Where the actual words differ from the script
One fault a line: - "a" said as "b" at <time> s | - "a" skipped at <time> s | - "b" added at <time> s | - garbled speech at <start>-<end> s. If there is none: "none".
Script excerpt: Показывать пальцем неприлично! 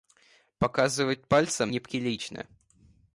none